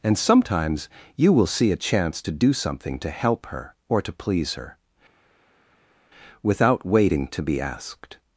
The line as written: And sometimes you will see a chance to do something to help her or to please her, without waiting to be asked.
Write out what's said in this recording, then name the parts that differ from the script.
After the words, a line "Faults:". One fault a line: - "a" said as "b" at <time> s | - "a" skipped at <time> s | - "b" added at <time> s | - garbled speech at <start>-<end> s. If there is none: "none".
And sometimes you will see a chance to do something to help her or to please her, without waiting to be asked.
Faults:
none